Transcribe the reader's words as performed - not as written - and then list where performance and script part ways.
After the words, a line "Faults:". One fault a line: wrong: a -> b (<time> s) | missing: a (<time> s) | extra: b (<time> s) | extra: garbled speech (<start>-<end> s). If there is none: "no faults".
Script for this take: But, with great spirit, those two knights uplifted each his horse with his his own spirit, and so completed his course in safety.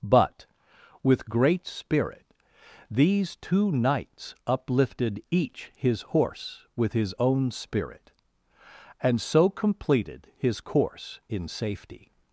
But, with great spirit, these two knights uplifted each his horse with his own spirit, and so completed his course in safety.
Faults:
wrong: those -> these (2.9 s)
missing: his (7.1 s)